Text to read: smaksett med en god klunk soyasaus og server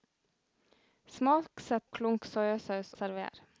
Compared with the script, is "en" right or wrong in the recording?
wrong